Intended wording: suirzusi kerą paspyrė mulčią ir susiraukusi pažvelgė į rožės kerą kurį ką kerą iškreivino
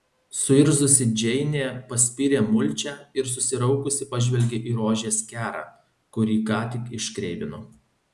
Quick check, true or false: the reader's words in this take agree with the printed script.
false